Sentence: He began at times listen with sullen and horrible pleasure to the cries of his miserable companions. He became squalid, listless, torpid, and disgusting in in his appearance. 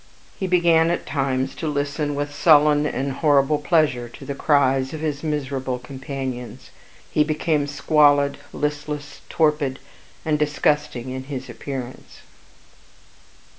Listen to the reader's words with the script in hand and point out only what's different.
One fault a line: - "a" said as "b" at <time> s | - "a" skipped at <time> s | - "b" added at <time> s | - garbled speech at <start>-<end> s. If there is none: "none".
- "to" added at 1.5 s
- "in" skipped at 11.2 s